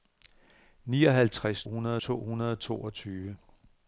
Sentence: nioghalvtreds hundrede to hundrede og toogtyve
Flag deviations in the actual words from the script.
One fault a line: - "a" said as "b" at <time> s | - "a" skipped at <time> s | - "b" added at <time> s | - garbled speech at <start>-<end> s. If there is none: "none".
none